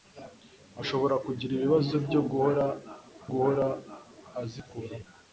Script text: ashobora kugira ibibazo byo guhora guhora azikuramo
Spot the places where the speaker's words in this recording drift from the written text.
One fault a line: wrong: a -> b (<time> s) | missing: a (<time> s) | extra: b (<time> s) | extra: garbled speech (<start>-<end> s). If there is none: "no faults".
no faults